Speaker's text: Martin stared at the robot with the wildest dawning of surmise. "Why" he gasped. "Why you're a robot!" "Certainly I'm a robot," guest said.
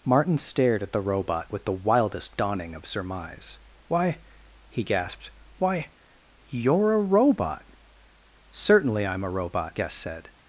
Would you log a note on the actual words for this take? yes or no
no